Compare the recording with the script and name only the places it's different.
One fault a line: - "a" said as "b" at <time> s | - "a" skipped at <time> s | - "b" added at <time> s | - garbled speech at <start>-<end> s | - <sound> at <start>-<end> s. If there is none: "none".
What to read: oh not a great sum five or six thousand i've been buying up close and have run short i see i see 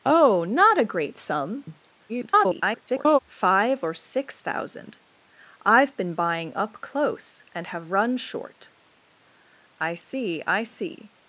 - garbled speech at 2.1-3.2 s